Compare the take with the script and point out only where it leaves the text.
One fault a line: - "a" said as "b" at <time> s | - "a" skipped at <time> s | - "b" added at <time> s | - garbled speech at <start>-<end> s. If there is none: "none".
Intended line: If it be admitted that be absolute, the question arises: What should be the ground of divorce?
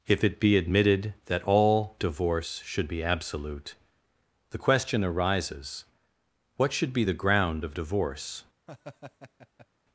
- "all divorce should" added at 1.4 s